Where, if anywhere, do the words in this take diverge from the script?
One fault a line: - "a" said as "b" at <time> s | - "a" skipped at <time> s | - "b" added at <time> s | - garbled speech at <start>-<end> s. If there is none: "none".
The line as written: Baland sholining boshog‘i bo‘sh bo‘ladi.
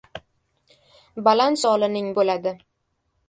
- "boshog‘i bo‘sh" skipped at 2.1 s